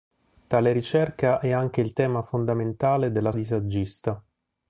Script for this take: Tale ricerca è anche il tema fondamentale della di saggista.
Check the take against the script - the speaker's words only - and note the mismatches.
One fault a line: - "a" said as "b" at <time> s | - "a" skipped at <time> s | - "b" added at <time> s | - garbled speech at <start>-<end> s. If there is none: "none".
none